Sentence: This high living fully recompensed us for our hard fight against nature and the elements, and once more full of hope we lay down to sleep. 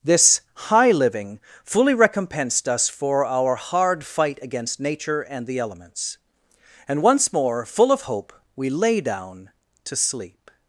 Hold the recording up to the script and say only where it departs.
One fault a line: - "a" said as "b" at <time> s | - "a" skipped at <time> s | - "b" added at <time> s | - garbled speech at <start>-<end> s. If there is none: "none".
none